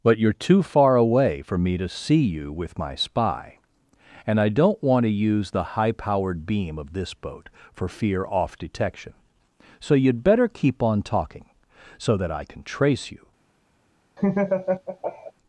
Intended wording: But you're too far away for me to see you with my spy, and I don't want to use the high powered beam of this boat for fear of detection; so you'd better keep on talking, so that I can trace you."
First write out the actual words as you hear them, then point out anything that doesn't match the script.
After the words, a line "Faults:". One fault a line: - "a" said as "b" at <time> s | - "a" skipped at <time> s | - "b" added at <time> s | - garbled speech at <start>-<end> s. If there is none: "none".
But you're too far away for me to see you with my spy, and I don't want to use the high powered beam of this boat for fear off detection; so you'd better keep on talking, so that I can trace you."
Faults:
- "of" said as "off" at 8.3 s